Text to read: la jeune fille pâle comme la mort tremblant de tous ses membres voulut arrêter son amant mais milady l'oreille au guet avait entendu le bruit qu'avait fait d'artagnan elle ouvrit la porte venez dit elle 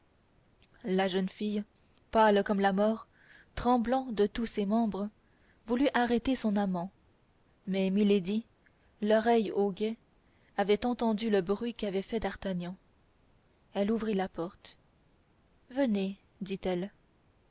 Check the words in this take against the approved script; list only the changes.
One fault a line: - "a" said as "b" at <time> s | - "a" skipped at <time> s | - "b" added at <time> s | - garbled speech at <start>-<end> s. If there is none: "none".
none